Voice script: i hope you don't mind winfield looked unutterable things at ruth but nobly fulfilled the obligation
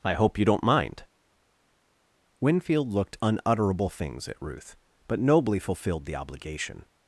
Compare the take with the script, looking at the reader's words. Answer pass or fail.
pass